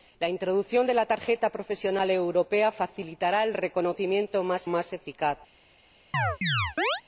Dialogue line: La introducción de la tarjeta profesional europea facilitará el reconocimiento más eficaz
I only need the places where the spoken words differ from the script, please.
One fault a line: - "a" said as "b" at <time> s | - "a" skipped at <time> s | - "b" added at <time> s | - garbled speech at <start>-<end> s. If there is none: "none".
- "más" added at 4.7 s